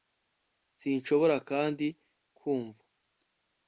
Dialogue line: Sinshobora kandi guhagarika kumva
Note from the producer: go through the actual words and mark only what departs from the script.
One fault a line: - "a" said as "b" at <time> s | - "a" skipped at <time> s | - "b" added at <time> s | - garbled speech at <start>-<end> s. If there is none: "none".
- "guhagarika" skipped at 1.9 s